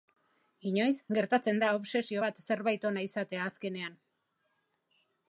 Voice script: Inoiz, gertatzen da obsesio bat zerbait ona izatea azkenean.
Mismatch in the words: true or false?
false